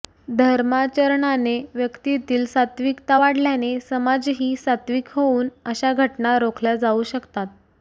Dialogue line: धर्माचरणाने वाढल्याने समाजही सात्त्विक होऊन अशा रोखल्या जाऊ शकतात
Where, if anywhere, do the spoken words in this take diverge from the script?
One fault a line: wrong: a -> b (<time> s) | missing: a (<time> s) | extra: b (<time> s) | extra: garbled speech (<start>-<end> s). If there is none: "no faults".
extra: व्यक्तीतील सात्त्विकता (1.7 s)
extra: घटना (5.9 s)